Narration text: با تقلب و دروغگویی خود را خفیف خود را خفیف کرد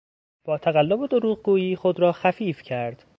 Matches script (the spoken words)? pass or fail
fail